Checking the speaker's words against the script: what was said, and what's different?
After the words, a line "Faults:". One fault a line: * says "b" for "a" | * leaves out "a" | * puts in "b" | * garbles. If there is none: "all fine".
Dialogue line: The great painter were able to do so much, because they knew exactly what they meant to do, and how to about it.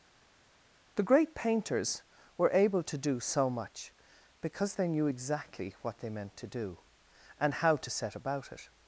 The great painters were able to do so much, because they knew exactly what they meant to do, and how to set about it.
Faults:
* says "painters" for "painter"
* puts in "set"